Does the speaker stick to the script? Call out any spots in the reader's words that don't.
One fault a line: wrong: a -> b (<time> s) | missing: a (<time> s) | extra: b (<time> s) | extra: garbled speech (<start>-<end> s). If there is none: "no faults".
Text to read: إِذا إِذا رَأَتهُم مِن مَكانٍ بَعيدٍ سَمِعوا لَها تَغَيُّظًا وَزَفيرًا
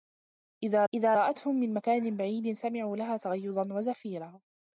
no faults